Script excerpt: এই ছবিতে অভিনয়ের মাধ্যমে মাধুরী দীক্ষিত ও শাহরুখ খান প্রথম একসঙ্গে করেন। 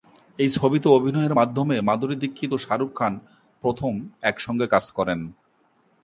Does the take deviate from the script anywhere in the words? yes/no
yes